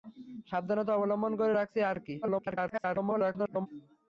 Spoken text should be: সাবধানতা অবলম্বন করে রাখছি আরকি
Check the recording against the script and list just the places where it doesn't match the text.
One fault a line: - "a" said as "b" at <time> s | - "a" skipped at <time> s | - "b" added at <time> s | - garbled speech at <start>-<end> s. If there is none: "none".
- garbled speech at 2.2-3.7 s